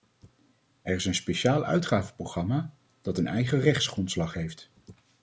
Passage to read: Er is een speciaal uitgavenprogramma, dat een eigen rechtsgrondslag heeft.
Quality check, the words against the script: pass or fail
pass